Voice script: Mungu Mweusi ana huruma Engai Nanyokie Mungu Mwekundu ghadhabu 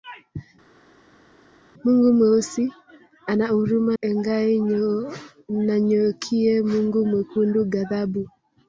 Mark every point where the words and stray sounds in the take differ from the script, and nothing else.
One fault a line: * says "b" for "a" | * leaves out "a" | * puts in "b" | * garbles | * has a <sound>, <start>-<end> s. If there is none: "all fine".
all fine